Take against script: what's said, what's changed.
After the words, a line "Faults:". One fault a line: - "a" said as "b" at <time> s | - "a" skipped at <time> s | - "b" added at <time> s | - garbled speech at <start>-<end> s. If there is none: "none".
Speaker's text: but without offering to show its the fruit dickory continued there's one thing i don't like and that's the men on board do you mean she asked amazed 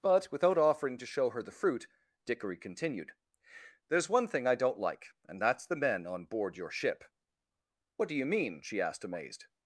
but without offering to show her the fruit dickory continued there's one thing i don't like and that's the men on board your ship what do you mean she asked amazed
Faults:
- "its" said as "her" at 1.3 s
- "your ship what" added at 6.6 s